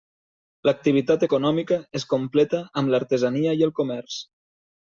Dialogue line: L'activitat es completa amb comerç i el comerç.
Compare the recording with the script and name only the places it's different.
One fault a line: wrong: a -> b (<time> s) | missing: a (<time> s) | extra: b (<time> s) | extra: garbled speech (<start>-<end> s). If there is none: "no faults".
extra: econòmica (1.2 s)
wrong: comerç -> l'artesania (3.0 s)